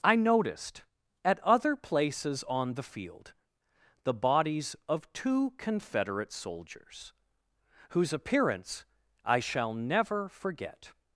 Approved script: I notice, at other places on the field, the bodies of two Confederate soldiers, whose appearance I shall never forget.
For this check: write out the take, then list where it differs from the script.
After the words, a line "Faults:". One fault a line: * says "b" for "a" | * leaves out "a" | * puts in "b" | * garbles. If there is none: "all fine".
I noticed, at other places on the field, the bodies of two Confederate soldiers, whose appearance I shall never forget.
Faults:
* says "noticed" for "notice"